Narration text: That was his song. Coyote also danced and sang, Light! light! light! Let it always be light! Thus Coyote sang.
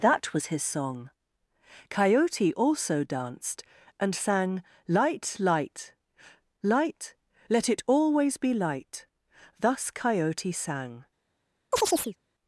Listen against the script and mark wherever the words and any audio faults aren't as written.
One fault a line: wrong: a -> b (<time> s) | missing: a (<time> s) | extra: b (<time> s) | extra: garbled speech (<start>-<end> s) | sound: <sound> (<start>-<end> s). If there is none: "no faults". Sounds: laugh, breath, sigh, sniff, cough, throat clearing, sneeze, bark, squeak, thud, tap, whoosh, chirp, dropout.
sound: chirp (11.7-12.2 s)